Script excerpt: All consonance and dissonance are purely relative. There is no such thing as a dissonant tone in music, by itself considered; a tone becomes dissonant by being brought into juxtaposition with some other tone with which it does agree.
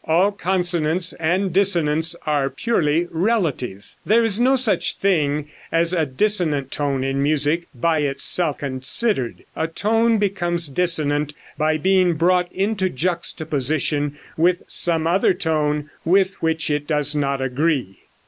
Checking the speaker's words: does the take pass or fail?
fail